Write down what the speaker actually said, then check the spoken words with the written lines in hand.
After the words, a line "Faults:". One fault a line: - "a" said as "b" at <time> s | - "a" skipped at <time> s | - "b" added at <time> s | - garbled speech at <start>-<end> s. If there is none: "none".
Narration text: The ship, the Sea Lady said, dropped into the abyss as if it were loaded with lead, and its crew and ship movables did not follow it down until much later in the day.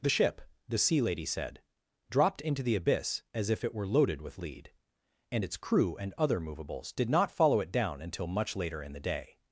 The ship, the Sea Lady said, dropped into the abyss as if it were loaded with lead, and its crew and other movables did not follow it down until much later in the day.
Faults:
- "ship" said as "other" at 6.2 s